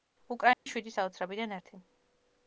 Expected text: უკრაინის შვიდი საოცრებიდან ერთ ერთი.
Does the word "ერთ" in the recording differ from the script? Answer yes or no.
yes